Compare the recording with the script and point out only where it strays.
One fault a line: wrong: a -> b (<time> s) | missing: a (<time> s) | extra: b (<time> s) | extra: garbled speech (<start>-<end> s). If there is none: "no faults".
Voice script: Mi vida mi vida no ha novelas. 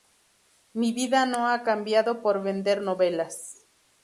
wrong: mi vida no ha -> no ha cambiado por vender (1.3 s)